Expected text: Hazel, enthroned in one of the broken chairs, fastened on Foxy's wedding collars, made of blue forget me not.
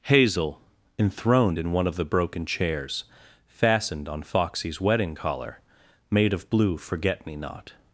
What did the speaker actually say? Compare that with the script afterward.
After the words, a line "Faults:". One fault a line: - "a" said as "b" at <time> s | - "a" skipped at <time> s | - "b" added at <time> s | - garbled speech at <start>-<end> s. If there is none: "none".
Hazel, enthroned in one of the broken chairs, fastened on Foxy's wedding collar, made of blue forget me not.
Faults:
- "collars" said as "collar" at 5.1 s